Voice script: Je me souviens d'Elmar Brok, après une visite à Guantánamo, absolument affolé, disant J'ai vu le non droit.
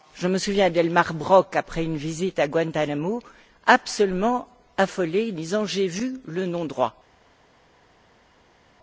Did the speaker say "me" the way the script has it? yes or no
yes